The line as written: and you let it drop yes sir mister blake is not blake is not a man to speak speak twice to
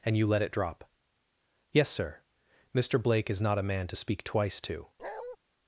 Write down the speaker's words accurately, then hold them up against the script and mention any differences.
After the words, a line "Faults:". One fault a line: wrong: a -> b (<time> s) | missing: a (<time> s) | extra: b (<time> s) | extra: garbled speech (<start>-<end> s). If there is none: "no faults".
and you let it drop yes sir mister blake is not a man to speak twice to
Faults:
missing: blake is not (3.6 s)
missing: speak (4.2 s)